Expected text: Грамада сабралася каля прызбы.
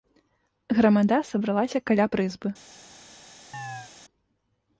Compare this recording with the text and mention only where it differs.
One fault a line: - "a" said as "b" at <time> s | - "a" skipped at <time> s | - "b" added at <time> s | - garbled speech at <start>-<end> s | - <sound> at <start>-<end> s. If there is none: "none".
- chirp at 3.5-3.9 s